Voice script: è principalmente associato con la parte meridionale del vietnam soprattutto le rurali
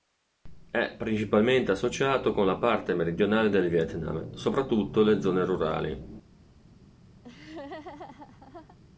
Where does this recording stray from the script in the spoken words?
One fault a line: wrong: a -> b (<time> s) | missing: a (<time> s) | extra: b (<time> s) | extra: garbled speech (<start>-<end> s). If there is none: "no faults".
extra: zone (5.2 s)